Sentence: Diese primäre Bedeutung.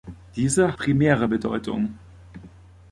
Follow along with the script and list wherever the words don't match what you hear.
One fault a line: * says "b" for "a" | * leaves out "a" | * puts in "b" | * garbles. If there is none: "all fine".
all fine